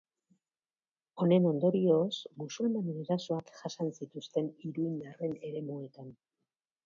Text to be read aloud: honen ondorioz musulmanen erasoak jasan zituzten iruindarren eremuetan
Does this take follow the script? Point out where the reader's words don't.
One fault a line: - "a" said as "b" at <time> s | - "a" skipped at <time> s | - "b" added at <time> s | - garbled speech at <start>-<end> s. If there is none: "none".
none